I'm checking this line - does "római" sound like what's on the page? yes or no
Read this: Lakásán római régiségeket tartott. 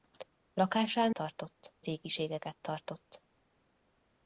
no